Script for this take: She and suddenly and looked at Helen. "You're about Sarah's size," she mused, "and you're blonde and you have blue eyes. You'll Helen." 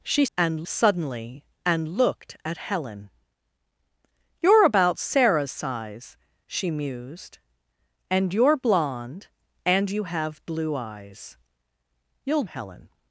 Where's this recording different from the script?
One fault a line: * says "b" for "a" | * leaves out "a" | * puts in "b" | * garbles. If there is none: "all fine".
all fine